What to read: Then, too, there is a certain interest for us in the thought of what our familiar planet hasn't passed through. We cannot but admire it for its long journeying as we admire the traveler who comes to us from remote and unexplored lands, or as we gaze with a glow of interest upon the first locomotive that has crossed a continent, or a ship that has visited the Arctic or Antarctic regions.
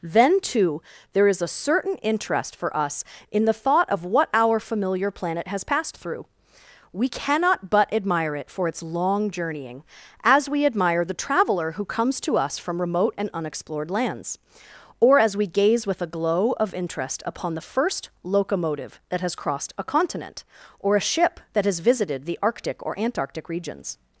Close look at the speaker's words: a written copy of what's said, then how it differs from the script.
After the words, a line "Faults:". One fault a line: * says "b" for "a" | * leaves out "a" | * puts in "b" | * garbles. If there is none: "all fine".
Then, too, there is a certain interest for us in the thought of what our familiar planet has passed through. We cannot but admire it for its long journeying as we admire the traveler who comes to us from remote and unexplored lands, or as we gaze with a glow of interest upon the first locomotive that has crossed a continent, or a ship that has visited the Arctic or Antarctic regions.
Faults:
* says "has" for "hasn't"